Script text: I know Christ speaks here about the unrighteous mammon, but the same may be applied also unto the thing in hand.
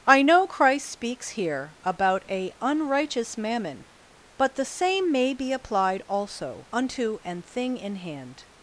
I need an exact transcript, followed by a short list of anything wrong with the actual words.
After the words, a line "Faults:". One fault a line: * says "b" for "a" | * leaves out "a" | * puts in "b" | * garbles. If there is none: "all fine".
I know Christ speaks here about a unrighteous mammon, but the same may be applied also unto an thing in hand.
Faults:
* says "a" for "the"
* says "an" for "the"